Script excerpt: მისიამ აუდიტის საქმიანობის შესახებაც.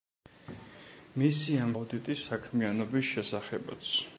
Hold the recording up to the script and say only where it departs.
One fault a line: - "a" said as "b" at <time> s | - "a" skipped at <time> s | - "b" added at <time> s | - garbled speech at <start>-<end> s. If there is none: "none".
none